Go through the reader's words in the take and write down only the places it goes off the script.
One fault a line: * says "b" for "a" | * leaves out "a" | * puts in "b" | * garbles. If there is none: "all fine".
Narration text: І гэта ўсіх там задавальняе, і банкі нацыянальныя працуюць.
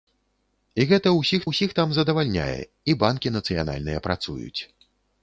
* puts in "ўсіх"